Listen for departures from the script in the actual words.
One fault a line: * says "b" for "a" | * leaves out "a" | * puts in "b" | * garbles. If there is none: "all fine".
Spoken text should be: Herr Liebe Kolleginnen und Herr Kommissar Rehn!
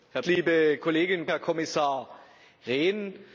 all fine